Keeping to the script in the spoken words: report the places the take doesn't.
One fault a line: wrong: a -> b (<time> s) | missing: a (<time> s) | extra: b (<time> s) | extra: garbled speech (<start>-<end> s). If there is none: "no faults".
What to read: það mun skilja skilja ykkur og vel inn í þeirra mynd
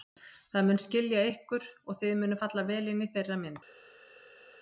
missing: skilja (1.2 s)
extra: þið munuð falla (2.0 s)